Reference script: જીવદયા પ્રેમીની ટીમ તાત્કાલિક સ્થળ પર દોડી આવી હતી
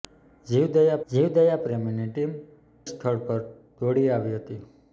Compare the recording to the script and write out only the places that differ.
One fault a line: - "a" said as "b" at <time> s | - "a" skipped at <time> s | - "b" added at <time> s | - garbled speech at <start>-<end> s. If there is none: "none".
- "જીવદયા" added at 1.1 s
- "તાત્કાલિક" skipped at 2.3 s